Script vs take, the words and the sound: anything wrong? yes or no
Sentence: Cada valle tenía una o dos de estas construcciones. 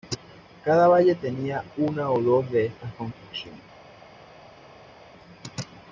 no